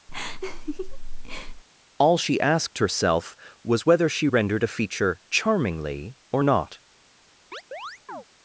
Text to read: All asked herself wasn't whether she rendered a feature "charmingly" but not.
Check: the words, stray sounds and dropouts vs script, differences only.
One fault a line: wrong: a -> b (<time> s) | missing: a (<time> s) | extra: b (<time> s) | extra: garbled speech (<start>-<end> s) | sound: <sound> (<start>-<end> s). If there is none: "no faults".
sound: laugh (0.1-1.6 s)
extra: she (2.2 s)
wrong: wasn't -> was (3.6 s)
wrong: but -> or (6.3 s)
sound: chirp (7.5-8.2 s)